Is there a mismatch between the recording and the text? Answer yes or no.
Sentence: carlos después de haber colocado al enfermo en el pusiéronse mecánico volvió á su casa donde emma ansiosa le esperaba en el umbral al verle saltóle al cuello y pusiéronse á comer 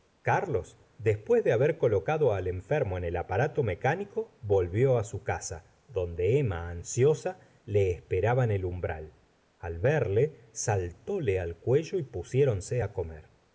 yes